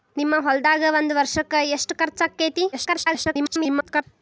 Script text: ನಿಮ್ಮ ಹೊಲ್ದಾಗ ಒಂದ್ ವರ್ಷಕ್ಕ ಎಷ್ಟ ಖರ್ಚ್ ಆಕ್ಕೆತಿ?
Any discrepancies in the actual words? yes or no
yes